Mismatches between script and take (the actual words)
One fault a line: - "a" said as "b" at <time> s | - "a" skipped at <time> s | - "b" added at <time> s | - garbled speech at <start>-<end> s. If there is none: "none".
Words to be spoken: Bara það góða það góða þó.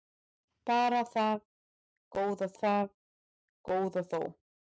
none